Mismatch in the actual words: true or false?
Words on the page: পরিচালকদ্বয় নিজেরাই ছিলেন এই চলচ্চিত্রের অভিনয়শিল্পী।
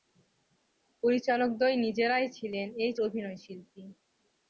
true